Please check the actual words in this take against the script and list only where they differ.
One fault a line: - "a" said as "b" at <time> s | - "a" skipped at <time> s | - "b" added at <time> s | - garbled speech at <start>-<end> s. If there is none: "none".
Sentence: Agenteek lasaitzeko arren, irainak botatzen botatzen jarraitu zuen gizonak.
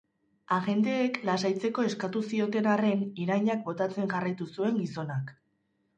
- "eskatu zioten" added at 1.9 s
- "botatzen" skipped at 4.1 s